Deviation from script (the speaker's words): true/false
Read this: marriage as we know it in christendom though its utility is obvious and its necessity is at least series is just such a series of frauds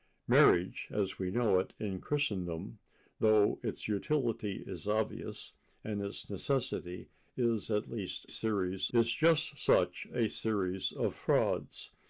false